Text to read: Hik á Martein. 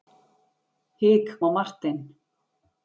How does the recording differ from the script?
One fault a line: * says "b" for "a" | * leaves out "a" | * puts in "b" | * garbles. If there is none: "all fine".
all fine